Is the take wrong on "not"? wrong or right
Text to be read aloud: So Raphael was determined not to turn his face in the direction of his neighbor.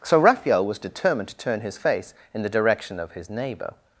wrong